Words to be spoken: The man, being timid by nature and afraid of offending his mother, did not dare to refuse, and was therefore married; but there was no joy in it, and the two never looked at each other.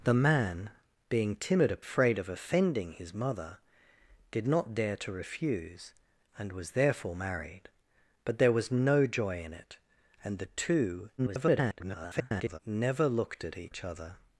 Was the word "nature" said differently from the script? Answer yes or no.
yes